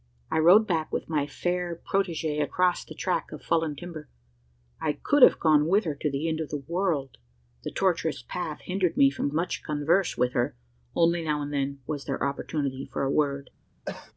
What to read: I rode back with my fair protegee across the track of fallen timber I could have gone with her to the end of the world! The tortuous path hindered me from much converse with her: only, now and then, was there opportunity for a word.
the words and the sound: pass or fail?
fail